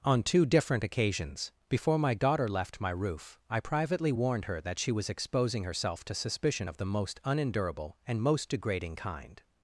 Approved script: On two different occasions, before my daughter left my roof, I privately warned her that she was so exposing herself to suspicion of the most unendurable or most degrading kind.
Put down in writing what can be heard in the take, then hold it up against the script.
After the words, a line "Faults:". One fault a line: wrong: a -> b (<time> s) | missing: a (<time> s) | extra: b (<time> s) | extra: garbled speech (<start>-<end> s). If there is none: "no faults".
On two different occasions, before my daughter left my roof, I privately warned her that she was exposing herself to suspicion of the most unendurable and most degrading kind.
Faults:
missing: so (5.1 s)
wrong: or -> and (8.0 s)